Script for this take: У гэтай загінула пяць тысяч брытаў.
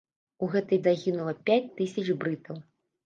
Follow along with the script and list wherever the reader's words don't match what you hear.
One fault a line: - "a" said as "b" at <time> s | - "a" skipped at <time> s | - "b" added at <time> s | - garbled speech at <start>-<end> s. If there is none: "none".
none